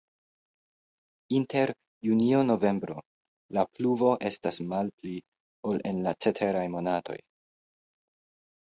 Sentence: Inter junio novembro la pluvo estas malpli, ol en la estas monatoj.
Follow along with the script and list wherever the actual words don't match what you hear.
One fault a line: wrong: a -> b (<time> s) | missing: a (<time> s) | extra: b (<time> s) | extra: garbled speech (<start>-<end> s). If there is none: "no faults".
wrong: estas -> ceteraj (6.3 s)